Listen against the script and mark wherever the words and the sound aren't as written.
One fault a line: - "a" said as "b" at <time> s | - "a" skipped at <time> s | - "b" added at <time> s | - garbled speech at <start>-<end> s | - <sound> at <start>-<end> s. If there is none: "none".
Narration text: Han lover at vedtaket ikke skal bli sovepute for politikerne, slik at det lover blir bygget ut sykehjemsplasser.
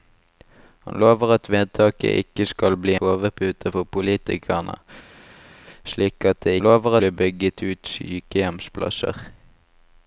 none